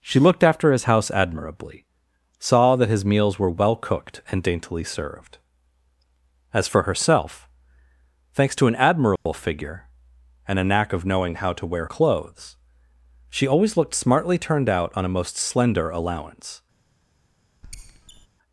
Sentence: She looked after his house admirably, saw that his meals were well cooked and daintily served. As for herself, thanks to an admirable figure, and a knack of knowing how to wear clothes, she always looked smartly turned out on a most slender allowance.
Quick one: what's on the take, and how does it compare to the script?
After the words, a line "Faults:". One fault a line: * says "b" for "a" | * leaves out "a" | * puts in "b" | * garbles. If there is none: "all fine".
She looked after his house admirably, saw that his meals were well cooked and daintily served. As for herself, thanks to an admirable figure, and a knack of knowing how to wear clothes, she always looked smartly turned out on a most slender allowance.
Faults:
all fine